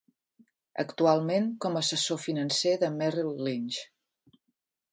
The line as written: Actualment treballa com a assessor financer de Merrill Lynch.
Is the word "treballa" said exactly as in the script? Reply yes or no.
no